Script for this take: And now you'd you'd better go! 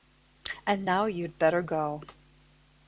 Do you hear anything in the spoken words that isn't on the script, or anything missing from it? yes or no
yes